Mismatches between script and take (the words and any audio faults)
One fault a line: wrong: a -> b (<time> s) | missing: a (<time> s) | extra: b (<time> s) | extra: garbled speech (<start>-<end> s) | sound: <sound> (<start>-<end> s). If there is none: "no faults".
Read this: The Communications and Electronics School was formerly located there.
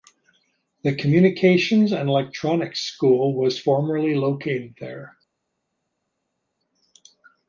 no faults